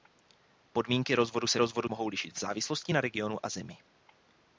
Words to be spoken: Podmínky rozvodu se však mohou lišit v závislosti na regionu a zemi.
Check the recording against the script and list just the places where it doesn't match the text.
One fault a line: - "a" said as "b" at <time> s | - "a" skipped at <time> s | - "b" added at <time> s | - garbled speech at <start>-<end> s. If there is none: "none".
- "však" said as "rozvodu" at 1.6 s